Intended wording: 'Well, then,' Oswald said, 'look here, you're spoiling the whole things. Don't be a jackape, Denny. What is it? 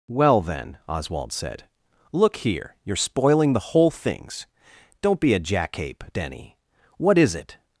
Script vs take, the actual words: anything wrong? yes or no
no